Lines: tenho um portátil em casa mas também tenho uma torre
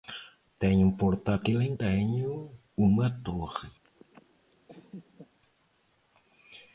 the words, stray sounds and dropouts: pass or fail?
fail